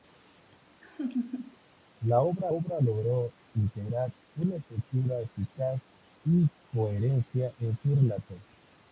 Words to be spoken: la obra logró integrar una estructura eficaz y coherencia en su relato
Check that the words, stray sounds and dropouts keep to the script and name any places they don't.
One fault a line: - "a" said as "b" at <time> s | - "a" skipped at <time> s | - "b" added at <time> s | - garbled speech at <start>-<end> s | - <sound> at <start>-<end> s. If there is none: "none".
- laugh at 0.8-1.6 s
- "obra" added at 2.5 s